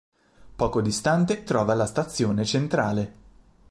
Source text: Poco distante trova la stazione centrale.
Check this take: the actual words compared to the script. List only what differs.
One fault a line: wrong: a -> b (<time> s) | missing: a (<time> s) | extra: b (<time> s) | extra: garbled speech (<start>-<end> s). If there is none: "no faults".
no faults